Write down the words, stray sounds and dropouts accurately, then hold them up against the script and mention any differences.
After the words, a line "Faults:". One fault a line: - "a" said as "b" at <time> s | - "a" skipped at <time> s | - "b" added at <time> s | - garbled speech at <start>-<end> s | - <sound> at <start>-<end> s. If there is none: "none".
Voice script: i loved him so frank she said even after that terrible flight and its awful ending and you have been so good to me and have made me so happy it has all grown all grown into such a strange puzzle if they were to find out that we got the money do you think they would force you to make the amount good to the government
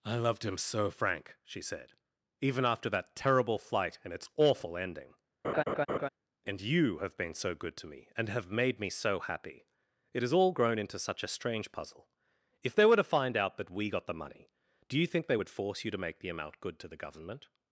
i loved him so frank she said even after that terrible flight and its awful ending and you have been so good to me and have made me so happy it has all grown into such a strange puzzle if they were to find out that we got the money do you think they would force you to make the amount good to the government
Faults:
- laugh at 5.4-6.1 s
- "all grown" skipped at 10.8 s